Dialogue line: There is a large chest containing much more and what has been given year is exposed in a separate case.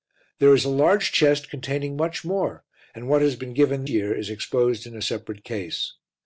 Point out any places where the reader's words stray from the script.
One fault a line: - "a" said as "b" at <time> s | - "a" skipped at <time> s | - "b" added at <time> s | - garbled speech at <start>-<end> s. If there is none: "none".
none